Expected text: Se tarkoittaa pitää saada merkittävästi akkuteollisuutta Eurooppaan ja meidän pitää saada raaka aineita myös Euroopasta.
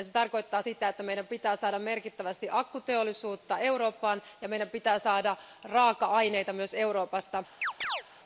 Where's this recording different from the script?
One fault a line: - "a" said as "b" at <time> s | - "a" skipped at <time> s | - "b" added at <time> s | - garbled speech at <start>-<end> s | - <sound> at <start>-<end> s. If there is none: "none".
- "sitä että meidän" added at 0.6 s
- chirp at 7.6-8.0 s